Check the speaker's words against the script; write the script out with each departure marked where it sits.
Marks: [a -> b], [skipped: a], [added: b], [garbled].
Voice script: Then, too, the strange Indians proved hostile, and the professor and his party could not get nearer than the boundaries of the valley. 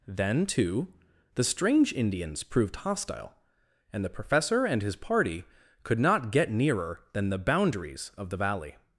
Then, too, the strange Indians proved hostile, and the professor and his party could not get nearer than the boundaries of the valley.